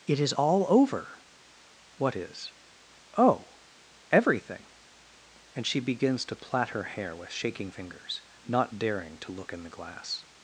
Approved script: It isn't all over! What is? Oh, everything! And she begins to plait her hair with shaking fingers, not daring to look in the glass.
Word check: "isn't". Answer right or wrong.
wrong